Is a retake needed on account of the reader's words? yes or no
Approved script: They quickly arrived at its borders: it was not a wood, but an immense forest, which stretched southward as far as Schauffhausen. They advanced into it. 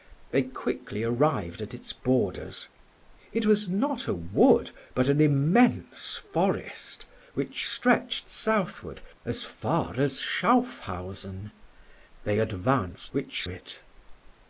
yes